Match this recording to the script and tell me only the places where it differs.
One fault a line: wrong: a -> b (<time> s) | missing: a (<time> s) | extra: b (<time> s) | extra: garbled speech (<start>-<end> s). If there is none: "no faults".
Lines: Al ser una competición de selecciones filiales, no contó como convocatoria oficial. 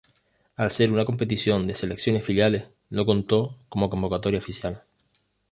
no faults